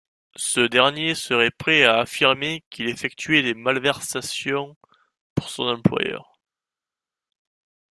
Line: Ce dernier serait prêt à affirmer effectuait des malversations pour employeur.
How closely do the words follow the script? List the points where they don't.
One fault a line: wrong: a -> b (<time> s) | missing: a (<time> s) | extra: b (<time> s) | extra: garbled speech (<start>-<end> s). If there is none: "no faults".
extra: qu'il (2.7 s)
extra: son (5.5 s)